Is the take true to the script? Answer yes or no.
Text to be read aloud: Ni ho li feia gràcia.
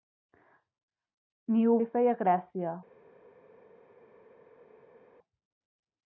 yes